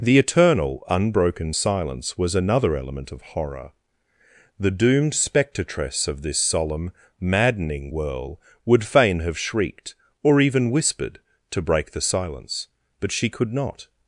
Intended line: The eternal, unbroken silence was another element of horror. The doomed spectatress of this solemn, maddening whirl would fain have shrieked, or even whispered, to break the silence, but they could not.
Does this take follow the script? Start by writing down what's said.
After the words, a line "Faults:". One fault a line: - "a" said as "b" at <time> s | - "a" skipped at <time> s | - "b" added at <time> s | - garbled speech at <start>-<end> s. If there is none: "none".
The eternal, unbroken silence was another element of horror. The doomed spectatress of this solemn, maddening whirl would fain have shrieked, or even whispered, to break the silence, but she could not.
Faults:
- "they" said as "she" at 13.1 s